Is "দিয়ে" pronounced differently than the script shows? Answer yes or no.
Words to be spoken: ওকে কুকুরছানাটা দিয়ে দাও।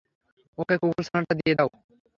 no